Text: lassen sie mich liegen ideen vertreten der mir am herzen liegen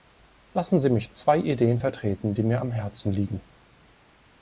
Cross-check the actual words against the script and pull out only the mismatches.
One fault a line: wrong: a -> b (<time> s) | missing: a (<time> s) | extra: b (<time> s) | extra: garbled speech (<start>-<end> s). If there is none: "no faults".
wrong: liegen -> zwei (1.1 s)
wrong: der -> die (2.3 s)